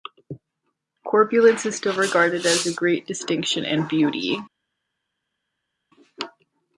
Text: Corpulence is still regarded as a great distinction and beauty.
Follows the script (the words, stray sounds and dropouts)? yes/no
yes